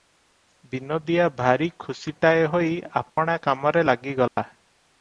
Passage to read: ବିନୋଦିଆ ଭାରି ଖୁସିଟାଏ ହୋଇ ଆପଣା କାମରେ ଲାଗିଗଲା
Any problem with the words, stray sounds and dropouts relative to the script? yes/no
yes